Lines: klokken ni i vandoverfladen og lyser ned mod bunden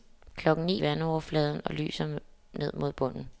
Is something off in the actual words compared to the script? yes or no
no